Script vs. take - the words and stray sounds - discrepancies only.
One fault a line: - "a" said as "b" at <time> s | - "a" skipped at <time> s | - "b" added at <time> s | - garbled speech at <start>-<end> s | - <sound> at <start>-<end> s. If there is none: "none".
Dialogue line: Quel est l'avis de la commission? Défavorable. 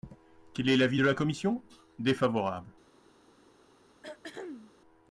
- throat clearing at 4.0-4.7 s